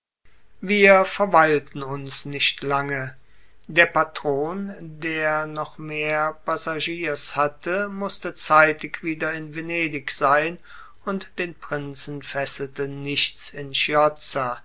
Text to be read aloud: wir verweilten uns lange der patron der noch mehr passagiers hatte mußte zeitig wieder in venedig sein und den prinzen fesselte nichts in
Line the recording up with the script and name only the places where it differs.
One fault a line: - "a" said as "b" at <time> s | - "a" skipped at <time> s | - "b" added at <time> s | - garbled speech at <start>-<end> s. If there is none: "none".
- "nicht" added at 2.2 s